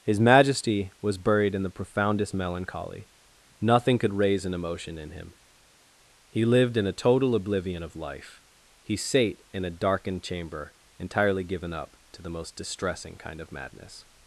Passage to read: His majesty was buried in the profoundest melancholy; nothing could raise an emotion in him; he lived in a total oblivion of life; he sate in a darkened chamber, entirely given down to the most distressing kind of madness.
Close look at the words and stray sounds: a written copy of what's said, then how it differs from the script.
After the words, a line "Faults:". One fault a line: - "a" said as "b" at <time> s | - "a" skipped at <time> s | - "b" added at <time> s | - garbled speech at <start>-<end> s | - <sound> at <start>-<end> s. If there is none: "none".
His majesty was buried in the profoundest melancholy; nothing could raise an emotion in him; he lived in a total oblivion of life; he sate in a darkened chamber, entirely given up to the most distressing kind of madness.
Faults:
- "down" said as "up" at 11.7 s